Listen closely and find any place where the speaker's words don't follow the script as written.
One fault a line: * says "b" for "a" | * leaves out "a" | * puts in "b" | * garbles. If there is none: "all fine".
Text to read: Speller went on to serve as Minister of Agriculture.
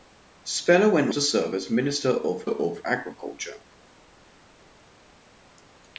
* leaves out "on"
* puts in "of"